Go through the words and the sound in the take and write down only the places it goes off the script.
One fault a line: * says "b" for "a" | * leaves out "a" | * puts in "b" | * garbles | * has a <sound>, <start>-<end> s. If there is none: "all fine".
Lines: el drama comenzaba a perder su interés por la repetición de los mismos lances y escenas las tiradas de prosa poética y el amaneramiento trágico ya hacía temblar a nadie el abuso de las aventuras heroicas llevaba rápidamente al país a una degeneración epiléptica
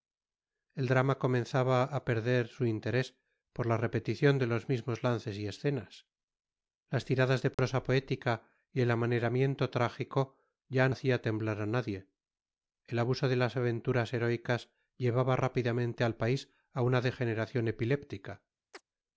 * has a dropout, 7.5-7.6 s
* has a chirp, 18.7-18.8 s